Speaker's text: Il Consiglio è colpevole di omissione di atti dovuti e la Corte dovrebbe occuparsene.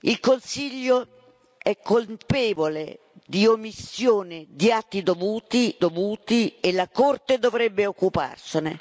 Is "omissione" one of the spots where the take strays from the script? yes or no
no